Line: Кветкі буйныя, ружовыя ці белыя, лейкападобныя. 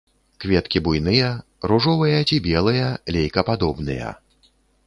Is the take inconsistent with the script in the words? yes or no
no